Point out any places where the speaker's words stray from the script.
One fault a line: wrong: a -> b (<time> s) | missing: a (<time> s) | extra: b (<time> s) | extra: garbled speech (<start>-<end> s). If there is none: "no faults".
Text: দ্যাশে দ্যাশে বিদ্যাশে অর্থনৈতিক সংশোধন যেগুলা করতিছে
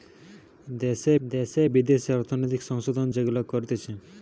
no faults